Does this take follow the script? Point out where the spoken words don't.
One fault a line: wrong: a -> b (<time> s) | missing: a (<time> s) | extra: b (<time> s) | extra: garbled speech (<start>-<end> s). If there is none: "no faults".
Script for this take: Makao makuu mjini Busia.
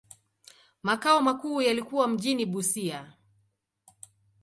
extra: yalikuwa (1.6 s)